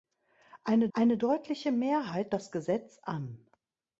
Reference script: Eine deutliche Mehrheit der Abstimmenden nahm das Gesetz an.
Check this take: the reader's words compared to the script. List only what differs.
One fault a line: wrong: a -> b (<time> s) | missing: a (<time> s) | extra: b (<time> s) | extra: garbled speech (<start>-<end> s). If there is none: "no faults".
extra: eine (0.9 s)
missing: der Abstimmenden nahm (2.3 s)